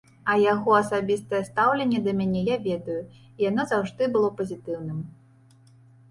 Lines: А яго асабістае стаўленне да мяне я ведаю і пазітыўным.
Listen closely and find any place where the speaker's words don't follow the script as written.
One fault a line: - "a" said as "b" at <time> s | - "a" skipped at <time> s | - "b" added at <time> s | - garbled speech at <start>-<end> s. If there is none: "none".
- "яно заўжды было" added at 3.5 s